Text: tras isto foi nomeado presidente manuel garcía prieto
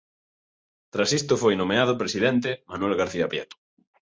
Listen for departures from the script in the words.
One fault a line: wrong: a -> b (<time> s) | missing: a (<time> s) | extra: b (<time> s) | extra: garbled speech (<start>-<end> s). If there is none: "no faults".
no faults